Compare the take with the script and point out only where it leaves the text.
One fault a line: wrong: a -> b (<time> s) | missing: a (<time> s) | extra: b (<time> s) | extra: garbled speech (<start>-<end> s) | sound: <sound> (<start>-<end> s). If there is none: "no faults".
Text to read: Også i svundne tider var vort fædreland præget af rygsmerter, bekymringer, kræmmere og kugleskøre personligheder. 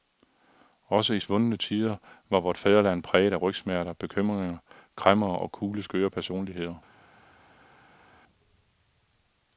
no faults